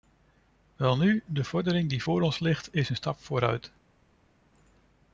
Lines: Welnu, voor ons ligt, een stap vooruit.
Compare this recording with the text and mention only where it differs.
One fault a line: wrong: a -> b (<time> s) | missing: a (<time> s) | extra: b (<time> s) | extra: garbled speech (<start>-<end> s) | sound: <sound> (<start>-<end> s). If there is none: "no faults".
extra: de verordening die (1.2 s)
extra: is (2.7 s)